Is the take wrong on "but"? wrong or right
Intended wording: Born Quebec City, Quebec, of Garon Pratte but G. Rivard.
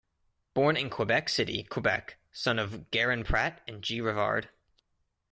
wrong